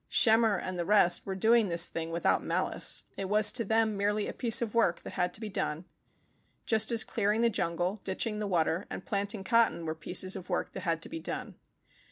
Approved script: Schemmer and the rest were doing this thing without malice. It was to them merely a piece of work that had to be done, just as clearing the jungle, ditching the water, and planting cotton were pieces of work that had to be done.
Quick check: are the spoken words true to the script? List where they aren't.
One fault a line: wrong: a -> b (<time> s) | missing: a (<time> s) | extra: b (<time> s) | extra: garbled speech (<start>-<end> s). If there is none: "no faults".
no faults